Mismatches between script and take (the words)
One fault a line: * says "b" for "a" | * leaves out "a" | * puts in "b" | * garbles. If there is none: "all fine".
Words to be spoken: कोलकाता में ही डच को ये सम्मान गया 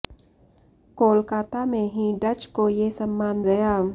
all fine